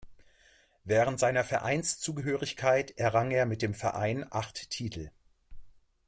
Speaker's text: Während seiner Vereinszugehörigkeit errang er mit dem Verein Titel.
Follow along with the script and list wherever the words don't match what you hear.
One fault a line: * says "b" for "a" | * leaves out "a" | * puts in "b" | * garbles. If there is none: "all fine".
* puts in "acht"